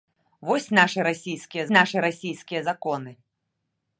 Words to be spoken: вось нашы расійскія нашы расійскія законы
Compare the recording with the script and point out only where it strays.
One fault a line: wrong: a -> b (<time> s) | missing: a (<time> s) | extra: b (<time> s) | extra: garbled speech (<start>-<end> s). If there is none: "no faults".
no faults